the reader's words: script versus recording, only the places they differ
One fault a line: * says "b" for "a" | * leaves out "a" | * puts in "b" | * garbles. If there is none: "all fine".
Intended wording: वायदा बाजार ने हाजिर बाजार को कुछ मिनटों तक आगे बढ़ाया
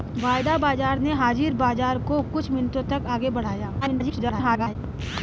* garbles